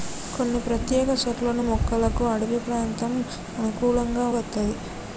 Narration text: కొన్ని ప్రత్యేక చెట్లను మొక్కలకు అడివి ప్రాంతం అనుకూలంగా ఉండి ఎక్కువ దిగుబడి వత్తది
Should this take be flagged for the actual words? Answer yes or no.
yes